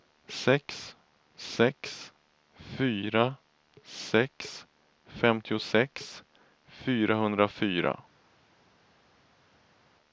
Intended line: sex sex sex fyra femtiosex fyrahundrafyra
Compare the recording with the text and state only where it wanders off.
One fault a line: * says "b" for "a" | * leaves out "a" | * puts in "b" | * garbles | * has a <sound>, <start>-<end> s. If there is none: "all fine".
* puts in "fyra"
* leaves out "fyra"